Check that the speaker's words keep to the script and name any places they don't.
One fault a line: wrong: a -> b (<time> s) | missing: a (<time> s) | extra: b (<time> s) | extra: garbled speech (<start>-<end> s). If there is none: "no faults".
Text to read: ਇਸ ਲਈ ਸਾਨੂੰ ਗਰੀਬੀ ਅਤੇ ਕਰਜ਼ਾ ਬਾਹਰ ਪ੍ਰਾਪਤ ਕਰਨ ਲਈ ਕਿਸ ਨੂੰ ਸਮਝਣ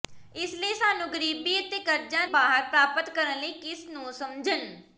no faults